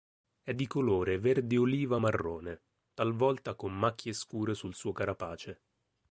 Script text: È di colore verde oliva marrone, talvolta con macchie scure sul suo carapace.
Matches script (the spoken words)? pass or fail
pass